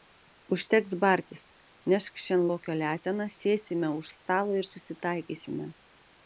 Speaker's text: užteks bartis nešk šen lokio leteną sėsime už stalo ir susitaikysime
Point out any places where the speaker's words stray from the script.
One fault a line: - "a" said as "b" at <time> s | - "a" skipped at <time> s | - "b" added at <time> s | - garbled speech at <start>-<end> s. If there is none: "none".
none